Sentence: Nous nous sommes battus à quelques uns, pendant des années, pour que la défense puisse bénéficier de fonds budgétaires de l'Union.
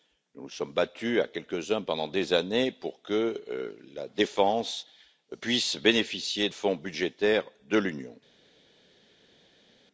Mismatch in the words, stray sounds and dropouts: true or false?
true